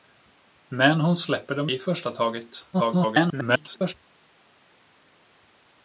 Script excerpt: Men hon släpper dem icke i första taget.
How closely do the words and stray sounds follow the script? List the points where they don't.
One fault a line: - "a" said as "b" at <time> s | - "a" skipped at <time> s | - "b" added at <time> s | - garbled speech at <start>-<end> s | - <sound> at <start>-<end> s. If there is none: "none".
- "icke" skipped at 1.7 s
- garbled speech at 2.7-3.9 s